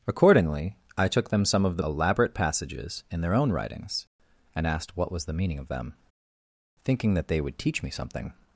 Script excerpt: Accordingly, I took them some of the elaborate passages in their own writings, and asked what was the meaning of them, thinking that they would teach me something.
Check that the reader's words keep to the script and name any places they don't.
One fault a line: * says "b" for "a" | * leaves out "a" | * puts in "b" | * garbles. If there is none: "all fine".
all fine